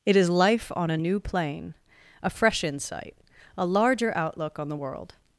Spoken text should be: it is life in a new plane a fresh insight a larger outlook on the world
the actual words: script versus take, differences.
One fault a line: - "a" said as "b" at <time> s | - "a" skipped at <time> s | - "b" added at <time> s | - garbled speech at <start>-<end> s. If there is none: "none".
- "in" said as "on" at 0.8 s